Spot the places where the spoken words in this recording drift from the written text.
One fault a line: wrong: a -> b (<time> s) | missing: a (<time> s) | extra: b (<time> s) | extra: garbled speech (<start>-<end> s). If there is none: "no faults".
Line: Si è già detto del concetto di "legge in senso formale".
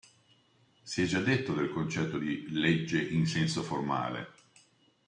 no faults